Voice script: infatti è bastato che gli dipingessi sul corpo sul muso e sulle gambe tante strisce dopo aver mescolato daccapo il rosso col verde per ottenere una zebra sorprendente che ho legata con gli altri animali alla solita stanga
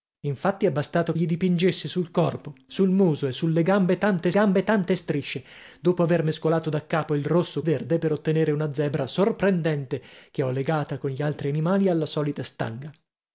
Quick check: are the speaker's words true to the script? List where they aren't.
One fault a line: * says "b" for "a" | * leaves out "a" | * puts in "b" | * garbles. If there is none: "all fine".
* leaves out "che"
* puts in "gambe tante"
* leaves out "col"